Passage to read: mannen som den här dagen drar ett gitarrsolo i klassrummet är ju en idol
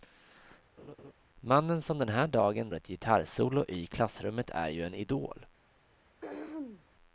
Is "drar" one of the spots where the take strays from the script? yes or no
yes